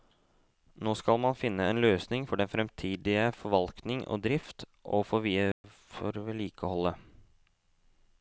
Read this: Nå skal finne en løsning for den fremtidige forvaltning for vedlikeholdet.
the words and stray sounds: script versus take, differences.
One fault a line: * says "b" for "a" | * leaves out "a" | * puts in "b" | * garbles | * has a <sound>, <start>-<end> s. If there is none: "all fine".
* puts in "man"
* puts in "og drift og"
* has a dropout, 5.5-5.6 s